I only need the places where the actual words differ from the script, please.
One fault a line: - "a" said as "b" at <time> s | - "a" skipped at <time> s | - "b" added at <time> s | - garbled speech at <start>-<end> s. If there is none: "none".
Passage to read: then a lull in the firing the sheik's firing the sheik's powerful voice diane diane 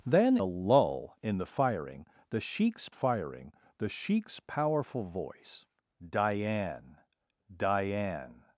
none